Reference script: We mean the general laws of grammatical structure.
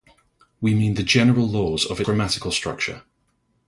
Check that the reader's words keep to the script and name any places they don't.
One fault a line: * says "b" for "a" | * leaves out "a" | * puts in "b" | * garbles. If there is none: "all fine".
all fine